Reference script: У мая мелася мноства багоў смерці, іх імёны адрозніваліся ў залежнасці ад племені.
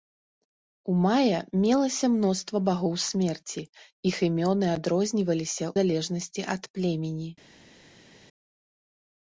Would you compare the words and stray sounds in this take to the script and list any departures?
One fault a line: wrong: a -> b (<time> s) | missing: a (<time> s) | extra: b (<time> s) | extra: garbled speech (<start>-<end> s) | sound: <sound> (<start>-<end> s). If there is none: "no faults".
missing: ў (5.7 s)